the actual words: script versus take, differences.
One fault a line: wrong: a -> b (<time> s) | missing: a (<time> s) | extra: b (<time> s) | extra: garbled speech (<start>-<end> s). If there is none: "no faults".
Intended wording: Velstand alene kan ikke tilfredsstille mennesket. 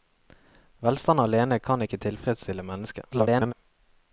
extra: garbled speech (3.1-3.5 s)